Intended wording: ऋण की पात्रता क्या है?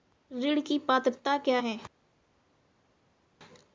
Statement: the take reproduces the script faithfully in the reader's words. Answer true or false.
true